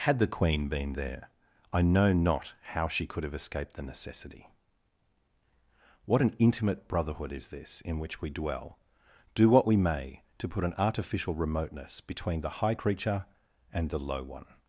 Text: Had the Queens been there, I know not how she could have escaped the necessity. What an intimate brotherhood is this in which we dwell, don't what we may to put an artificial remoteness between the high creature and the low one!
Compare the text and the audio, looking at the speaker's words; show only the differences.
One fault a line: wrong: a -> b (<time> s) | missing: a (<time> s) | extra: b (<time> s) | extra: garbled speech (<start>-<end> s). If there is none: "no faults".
wrong: Queens -> Queen (0.2 s)
wrong: don't -> do (9.3 s)